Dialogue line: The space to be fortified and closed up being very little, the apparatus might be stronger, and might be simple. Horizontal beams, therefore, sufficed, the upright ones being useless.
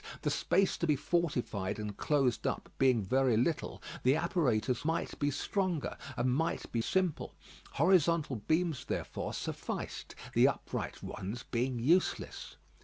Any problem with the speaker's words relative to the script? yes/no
no